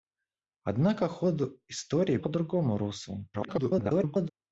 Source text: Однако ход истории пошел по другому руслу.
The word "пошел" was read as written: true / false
false